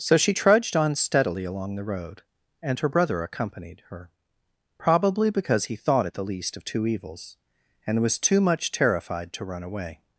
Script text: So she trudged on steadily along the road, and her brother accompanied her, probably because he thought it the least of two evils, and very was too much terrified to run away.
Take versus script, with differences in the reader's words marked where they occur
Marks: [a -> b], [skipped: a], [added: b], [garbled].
So she trudged on steadily along the road, and her brother accompanied her, probably because he thought it the least of two evils, and [skipped: very] was too much terrified to run away.